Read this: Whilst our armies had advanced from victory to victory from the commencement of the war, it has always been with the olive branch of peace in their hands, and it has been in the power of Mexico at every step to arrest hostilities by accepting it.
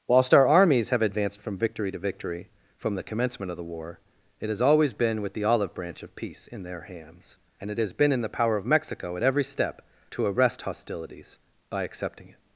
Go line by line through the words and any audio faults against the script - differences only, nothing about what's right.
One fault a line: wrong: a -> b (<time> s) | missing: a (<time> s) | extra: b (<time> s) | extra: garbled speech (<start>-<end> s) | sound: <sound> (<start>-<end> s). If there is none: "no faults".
wrong: had -> have (0.9 s)